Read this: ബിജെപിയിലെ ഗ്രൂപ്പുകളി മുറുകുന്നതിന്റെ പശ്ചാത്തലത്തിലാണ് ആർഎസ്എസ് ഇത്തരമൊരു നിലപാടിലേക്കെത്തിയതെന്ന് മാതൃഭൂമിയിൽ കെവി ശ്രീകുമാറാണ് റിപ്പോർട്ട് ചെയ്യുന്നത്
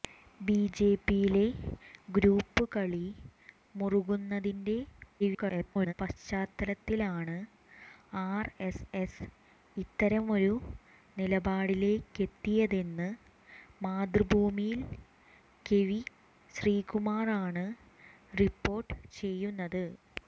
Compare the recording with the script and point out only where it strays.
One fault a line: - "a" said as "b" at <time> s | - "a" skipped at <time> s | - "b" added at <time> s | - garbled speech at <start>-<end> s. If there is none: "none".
- garbled speech at 5.2-5.9 s